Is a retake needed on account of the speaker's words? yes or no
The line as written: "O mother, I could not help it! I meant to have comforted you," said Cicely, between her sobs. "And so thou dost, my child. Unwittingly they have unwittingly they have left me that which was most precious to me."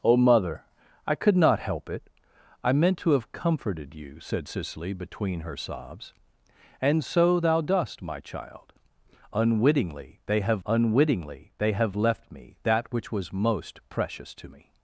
no